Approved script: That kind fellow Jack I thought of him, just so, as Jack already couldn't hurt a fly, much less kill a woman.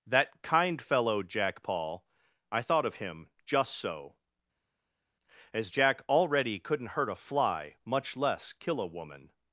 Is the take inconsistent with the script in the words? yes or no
yes